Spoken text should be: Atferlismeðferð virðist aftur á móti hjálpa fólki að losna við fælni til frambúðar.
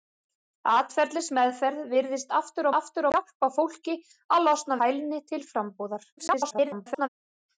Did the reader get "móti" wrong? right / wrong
wrong